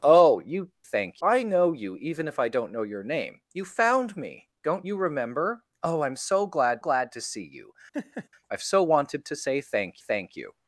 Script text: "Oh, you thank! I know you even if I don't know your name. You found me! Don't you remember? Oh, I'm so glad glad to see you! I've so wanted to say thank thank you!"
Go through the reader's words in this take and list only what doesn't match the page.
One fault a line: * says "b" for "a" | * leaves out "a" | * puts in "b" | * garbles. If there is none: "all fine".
all fine